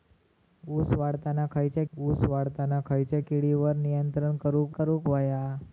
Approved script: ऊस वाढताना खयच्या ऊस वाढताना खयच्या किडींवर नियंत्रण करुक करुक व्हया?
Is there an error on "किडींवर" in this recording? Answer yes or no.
no